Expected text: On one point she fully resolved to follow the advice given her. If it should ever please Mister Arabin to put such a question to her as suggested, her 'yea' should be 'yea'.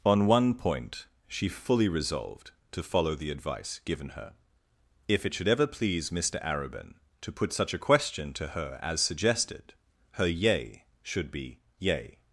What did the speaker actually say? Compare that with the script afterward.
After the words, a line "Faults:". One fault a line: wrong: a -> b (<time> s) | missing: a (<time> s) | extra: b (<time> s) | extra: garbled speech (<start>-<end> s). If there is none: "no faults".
On one point she fully resolved to follow the advice given her. If it should ever please Mister Arabin to put such a question to her as suggested, her 'yea' should be 'yea'.
Faults:
no faults